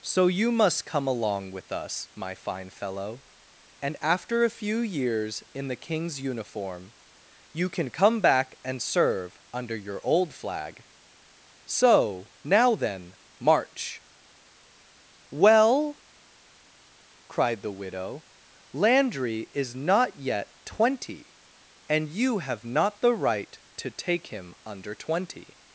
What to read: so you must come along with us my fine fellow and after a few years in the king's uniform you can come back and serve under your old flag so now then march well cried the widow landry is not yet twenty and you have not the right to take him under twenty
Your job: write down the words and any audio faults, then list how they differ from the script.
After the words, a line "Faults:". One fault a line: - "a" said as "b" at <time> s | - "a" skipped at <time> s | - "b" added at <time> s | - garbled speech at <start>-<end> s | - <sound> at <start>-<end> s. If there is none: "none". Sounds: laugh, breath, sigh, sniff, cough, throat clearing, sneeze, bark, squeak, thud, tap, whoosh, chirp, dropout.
so you must come along with us my fine fellow and after a few years in the king's uniform you can come back and serve under your old flag so now then march well cried the widow landry is not yet twenty and you have not the right to take him under twenty
Faults:
none